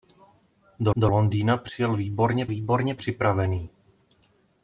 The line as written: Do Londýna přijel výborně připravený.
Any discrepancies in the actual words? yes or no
yes